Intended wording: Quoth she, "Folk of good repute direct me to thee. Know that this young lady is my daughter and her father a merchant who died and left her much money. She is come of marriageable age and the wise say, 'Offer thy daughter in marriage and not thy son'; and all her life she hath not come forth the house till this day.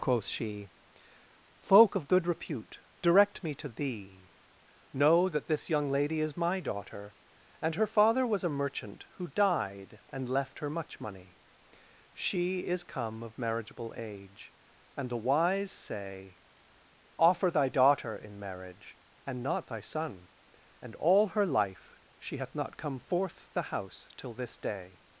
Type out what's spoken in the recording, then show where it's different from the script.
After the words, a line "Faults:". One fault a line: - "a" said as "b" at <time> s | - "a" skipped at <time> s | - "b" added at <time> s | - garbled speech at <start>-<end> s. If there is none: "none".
Quoth she, "Folk of good repute direct me to thee. Know that this young lady is my daughter and her father was a merchant who died and left her much money. She is come of marriageable age and the wise say, 'Offer thy daughter in marriage and not thy son'; and all her life she hath not come forth the house till this day.
Faults:
- "was" added at 8.2 s